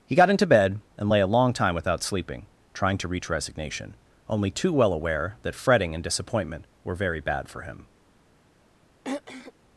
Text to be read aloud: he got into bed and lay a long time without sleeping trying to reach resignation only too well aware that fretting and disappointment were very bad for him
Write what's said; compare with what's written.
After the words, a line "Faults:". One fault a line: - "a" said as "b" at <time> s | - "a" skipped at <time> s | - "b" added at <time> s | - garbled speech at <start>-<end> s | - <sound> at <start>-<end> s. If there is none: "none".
he got into bed and lay a long time without sleeping trying to reach resignation only too well aware that fretting and disappointment were very bad for him
Faults:
- throat clearing at 9.0-9.5 s